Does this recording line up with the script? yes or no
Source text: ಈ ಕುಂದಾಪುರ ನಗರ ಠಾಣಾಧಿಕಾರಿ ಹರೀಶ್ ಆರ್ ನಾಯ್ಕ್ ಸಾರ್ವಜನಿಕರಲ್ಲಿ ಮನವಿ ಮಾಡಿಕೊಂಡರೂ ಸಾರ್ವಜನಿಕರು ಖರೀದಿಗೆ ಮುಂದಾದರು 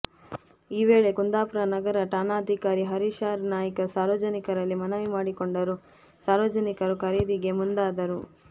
no